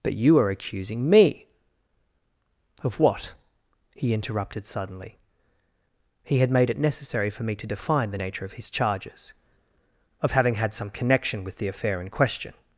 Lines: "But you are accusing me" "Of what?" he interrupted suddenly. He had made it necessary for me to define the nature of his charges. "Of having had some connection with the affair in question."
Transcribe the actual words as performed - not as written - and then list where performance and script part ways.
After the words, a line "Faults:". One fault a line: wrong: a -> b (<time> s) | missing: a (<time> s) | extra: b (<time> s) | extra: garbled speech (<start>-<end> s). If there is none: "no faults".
"But you are accusing me" "Of what?" he interrupted suddenly. He had made it necessary for me to define the nature of his charges. "Of having had some connection with the affair in question."
Faults:
no faults